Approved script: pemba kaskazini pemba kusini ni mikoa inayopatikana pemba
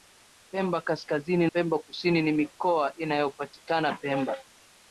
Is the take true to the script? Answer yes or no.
yes